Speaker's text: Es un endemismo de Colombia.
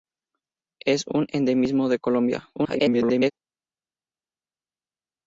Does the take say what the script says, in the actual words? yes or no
no